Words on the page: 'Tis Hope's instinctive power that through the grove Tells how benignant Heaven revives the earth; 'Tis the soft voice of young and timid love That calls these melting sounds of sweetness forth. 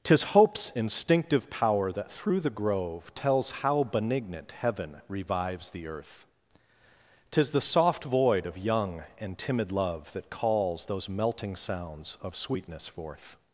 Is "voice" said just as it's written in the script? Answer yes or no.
no